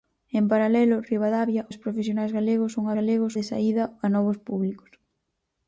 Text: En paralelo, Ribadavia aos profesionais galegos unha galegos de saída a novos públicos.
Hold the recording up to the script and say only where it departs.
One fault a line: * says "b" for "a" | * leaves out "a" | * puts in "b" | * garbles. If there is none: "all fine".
all fine